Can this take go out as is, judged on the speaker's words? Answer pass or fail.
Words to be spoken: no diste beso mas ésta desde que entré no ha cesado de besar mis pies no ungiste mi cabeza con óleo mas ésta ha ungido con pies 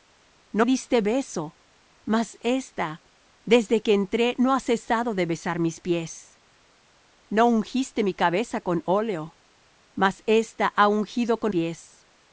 pass